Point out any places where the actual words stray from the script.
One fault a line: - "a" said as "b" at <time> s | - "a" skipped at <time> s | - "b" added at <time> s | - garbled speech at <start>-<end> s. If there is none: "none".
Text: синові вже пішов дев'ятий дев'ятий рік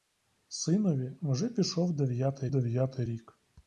none